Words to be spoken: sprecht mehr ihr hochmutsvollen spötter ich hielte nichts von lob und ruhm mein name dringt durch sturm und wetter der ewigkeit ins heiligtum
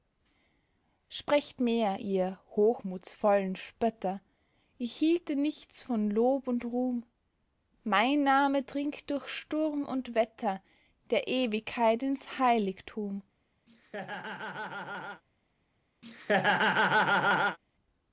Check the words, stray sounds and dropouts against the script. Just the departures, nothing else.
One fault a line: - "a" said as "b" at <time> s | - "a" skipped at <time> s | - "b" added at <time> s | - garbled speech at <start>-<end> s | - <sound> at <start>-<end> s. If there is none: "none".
- laugh at 13.7-15.2 s
- laugh at 16.0-17.6 s